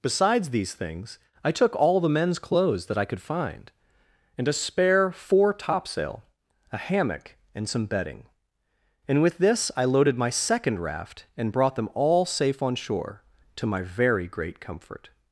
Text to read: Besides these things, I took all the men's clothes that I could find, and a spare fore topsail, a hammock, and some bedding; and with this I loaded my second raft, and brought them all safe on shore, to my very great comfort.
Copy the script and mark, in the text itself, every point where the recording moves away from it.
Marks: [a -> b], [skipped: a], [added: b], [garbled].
Besides these things, I took all the men's clothes that I could find, and a spare fore topsail, a hammock, and some bedding; and with this I loaded my second raft, and brought them all safe on shore, to my very great comfort.